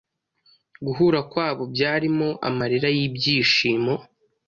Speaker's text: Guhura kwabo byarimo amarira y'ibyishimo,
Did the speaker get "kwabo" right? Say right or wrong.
right